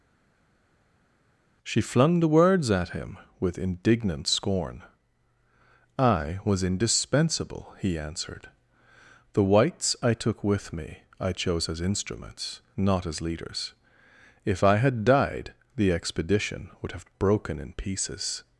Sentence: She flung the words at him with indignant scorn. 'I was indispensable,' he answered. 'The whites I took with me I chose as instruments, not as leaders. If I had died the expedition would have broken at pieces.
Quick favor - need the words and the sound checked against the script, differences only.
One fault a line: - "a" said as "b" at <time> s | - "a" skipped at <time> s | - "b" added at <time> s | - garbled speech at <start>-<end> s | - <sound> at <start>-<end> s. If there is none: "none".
- "at" said as "in" at 17.6 s